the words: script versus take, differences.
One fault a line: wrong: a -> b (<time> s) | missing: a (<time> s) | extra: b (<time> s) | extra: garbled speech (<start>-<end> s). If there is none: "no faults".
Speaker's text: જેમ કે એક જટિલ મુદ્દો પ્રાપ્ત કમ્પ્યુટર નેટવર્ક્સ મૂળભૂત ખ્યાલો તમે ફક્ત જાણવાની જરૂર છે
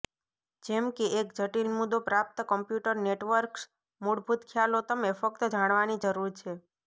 no faults